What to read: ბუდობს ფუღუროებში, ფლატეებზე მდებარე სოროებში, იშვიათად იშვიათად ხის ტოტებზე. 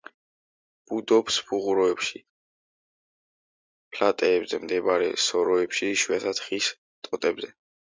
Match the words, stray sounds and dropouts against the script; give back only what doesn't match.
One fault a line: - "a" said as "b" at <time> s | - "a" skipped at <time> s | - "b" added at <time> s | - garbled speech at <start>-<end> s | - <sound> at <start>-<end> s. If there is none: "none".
- "იშვიათად" skipped at 6.4 s